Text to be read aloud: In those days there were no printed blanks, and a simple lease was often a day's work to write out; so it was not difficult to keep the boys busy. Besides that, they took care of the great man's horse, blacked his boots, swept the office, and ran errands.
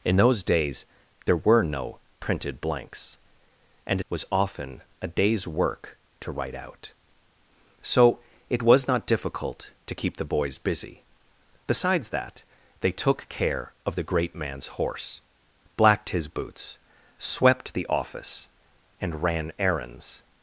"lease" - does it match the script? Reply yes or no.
no